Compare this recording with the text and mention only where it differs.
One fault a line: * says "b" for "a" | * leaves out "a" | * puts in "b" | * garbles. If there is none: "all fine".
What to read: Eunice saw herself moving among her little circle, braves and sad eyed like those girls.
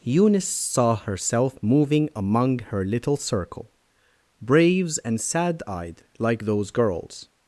all fine